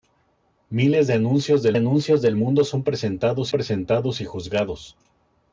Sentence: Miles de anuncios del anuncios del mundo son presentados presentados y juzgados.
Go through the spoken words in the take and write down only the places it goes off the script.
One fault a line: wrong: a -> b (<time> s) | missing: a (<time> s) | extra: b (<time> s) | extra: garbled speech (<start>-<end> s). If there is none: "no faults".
no faults